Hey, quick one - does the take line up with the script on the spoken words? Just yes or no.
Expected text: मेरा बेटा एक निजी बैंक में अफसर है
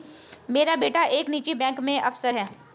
yes